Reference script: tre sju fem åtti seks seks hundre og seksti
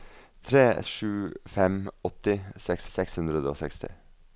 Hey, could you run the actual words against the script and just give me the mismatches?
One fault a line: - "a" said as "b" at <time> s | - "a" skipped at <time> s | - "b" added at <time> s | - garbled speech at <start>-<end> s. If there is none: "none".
none